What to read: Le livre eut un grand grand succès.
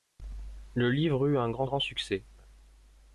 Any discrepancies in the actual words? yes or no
no